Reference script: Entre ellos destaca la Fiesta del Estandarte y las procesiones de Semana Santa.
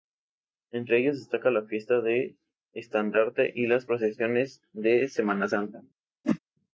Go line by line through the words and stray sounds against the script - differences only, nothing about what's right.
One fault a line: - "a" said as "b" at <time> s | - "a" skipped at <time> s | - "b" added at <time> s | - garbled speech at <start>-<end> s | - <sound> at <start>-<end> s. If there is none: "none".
- whoosh at 6.2-6.4 s